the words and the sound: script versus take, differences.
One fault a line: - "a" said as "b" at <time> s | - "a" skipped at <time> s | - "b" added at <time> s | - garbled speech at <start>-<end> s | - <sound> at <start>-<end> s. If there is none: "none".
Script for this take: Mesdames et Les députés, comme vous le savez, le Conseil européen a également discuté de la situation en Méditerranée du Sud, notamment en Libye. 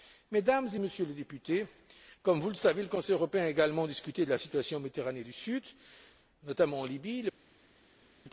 - "Messieurs" added at 0.8 s